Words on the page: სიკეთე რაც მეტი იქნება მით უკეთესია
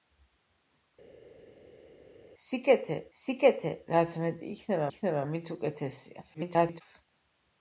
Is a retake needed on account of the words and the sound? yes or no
yes